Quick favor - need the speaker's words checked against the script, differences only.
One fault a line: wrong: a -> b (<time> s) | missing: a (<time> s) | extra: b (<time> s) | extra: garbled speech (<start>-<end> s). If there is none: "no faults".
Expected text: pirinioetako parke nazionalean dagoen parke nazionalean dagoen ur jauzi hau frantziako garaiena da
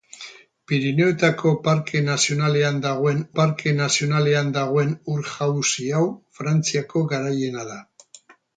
no faults